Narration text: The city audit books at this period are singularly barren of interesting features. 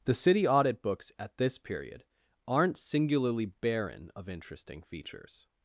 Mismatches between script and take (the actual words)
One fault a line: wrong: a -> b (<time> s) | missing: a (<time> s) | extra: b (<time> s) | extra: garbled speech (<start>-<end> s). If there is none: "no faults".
wrong: are -> aren't (2.5 s)